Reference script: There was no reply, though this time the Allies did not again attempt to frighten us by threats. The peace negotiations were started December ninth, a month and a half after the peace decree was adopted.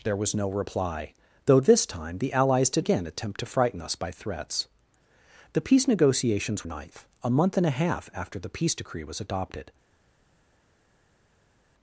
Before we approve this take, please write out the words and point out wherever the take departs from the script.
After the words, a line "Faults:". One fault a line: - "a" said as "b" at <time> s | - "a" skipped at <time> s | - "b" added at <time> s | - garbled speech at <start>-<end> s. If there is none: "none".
There was no reply, though this time the Allies did again attempt to frighten us by threats. The peace negotiations ninth, a month and a half after the peace decree was adopted.
Faults:
- "not" skipped at 2.9 s
- "were started December" skipped at 6.6 s